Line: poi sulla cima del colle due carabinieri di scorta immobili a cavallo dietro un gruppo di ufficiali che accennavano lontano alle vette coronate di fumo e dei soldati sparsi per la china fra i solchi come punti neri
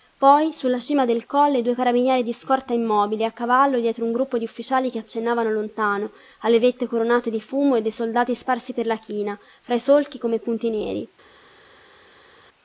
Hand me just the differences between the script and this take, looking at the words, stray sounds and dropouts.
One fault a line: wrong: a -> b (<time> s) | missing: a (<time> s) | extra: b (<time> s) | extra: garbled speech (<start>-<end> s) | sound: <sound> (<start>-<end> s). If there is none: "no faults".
no faults